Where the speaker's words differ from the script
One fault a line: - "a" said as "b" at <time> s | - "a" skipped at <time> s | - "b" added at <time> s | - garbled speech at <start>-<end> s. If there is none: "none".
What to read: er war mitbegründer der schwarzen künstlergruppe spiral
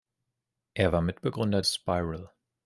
- "der schwarzen künstlergruppe" skipped at 1.6 s